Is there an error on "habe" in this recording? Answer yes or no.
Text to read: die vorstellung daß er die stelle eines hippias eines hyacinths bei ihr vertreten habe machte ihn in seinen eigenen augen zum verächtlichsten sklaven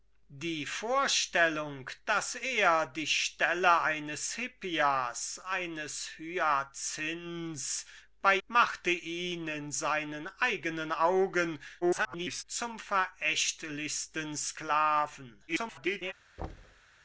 yes